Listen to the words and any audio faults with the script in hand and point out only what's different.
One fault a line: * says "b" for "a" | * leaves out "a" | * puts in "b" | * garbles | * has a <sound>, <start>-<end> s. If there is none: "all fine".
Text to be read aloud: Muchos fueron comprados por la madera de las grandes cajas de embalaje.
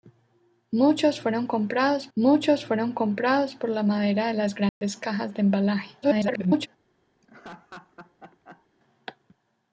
* puts in "muchos fueron comprados"
* has a dropout, 4.7-4.8 s
* garbles
* has a laugh, 7.2-8.7 s